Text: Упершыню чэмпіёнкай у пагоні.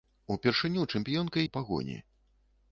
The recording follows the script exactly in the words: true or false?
true